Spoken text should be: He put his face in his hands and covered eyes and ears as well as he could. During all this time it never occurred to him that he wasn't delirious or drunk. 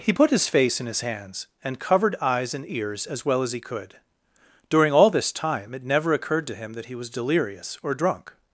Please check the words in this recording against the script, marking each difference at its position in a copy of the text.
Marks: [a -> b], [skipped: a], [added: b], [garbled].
He put his face in his hands and covered eyes and ears as well as he could. During all this time it never occurred to him that he [wasn't -> was] delirious or drunk.